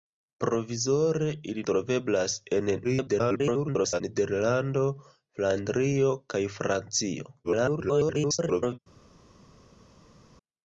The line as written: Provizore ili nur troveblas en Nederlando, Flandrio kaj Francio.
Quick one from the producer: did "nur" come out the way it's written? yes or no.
no